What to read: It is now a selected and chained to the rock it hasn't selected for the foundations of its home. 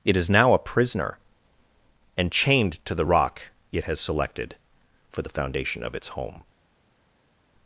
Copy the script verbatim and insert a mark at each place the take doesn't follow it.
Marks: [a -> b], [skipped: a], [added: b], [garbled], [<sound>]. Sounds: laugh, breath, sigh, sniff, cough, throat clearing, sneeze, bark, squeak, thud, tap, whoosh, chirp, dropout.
It is now a [selected -> prisoner] and chained to the rock it [hasn't -> has] selected for the [foundations -> foundation] of its home.